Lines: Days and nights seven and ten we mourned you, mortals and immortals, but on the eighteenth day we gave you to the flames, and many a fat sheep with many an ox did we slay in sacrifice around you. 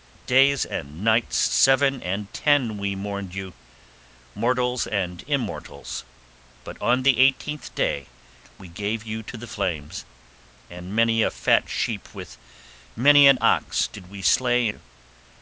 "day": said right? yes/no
yes